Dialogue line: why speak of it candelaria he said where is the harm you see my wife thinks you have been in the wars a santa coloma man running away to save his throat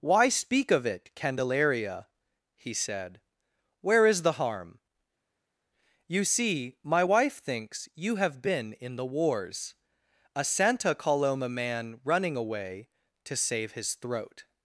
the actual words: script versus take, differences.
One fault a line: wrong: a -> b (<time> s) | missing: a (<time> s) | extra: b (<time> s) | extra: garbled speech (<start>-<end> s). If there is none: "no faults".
no faults